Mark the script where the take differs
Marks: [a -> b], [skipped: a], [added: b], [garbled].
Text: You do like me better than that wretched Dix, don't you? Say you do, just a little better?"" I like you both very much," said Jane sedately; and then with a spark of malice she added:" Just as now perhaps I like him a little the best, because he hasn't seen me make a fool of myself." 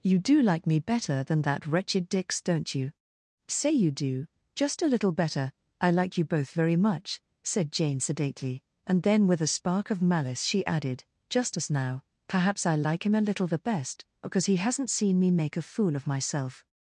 You do like me better than that wretched Dix, don't you? Say you do, just a little better?"" I like you both very much," said Jane sedately; and then with a spark of malice she added:" Just as now perhaps I like him a little the best, because he hasn't seen me make a fool of myself."